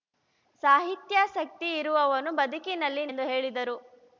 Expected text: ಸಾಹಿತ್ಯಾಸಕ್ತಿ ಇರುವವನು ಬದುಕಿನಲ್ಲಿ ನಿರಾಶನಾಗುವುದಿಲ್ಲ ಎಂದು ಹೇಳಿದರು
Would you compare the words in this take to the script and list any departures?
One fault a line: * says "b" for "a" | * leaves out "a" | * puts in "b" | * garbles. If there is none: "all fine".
* leaves out "ನಿರಾಶನಾಗುವುದಿಲ್ಲ"